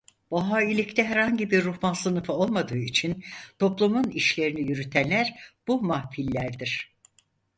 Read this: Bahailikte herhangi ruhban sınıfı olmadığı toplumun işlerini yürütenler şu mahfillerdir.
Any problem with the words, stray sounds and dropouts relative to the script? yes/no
yes